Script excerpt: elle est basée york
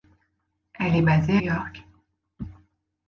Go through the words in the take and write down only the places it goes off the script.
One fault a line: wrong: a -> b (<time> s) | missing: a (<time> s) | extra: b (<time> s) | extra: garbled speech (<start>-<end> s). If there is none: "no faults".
no faults